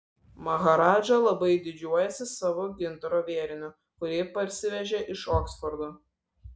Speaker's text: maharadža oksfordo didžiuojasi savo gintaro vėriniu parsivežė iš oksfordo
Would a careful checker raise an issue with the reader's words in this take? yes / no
yes